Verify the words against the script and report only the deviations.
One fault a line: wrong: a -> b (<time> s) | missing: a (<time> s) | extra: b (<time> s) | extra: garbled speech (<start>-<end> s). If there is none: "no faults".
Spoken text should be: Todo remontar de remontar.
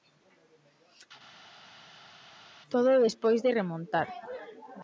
wrong: remontar -> despois (3.1 s)